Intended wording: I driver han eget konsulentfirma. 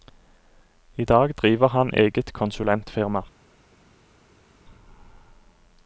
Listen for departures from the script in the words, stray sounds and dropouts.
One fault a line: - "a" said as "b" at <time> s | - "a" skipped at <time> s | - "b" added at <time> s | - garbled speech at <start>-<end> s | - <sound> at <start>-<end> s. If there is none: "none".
- "dag" added at 1.1 s